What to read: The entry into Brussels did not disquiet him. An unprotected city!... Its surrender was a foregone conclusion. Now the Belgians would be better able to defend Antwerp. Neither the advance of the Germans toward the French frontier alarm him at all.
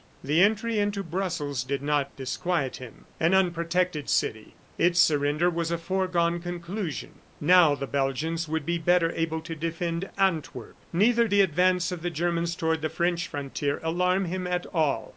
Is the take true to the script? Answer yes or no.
yes